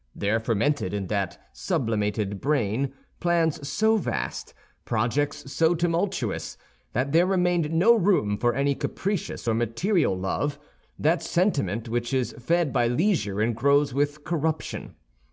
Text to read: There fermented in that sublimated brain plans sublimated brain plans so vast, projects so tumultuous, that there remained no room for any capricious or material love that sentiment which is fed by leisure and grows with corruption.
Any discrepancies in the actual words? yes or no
yes